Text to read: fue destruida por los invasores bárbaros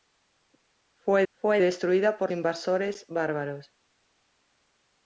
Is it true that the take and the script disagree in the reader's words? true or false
true